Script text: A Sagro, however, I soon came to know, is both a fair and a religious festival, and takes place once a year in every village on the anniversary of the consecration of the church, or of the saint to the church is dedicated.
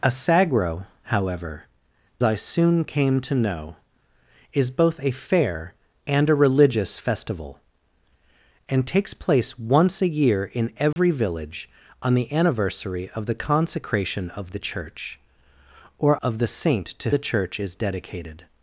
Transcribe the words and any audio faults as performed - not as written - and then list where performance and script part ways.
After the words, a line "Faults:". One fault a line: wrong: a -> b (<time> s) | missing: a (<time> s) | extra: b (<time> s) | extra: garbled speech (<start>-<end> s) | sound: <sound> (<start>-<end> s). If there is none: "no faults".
A Sagro, however, I soon came to know, is both a fair and a religious festival, and takes place once a year in every village on the anniversary of the consecration of the church, or of the saint to the church is dedicated.
Faults:
sound: dropout (10.9-11.0 s)